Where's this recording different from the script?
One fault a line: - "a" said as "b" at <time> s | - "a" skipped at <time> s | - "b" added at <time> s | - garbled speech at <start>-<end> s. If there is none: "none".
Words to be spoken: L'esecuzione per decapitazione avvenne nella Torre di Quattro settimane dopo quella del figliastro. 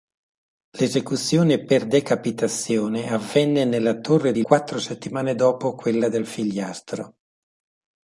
none